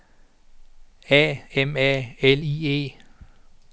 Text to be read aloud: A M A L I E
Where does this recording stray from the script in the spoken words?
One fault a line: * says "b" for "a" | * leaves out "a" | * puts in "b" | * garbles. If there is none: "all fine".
all fine